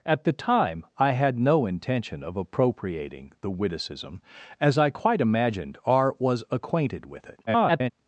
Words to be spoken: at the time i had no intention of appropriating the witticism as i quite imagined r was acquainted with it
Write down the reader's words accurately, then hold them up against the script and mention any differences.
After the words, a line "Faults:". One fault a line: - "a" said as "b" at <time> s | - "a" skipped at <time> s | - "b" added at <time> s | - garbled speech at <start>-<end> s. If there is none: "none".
at the time i had no intention of appropriating the witticism as i quite imagined r was acquainted with it [garbled]
Faults:
- garbled speech at 7.5-7.9 s